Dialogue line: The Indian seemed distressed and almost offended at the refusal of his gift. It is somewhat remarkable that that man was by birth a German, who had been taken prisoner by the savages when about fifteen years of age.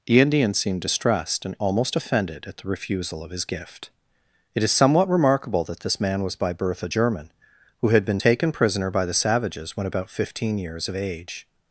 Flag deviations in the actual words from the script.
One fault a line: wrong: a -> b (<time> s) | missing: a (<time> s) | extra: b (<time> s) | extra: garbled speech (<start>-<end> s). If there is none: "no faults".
wrong: that -> this (5.8 s)